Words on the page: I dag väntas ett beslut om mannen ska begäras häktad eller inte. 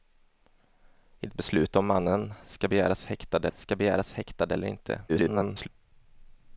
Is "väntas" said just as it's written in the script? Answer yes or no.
no